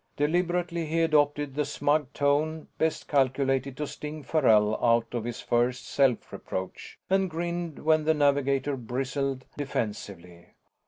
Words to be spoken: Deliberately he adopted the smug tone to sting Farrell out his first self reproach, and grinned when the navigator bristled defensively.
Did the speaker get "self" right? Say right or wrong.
right